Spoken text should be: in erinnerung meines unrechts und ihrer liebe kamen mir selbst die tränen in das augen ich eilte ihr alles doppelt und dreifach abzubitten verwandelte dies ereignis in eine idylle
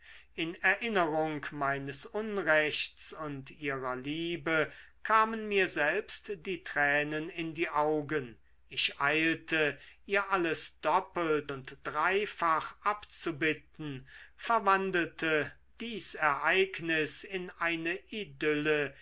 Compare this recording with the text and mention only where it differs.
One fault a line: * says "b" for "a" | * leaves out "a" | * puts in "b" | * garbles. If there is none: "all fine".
* says "die" for "das"